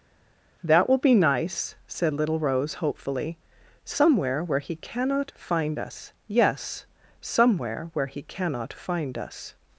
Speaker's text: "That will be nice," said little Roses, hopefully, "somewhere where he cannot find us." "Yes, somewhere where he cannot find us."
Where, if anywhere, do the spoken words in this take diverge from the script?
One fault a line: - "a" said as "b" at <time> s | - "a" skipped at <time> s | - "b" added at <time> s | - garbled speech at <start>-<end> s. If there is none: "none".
- "Roses" said as "Rose" at 2.4 s